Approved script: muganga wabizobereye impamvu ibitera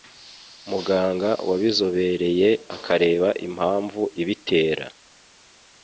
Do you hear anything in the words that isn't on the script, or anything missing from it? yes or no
yes